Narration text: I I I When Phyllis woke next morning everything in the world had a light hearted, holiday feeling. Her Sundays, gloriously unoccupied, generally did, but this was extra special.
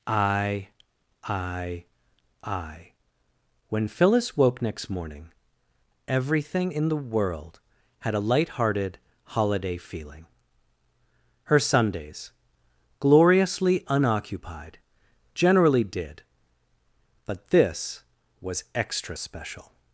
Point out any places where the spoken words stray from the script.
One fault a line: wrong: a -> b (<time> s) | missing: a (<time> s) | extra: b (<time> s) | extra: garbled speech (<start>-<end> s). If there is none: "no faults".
no faults